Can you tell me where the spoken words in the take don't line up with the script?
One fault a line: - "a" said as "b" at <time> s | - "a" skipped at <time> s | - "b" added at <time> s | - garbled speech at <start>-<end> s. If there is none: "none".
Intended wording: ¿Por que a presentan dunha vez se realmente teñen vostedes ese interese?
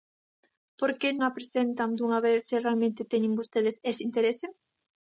none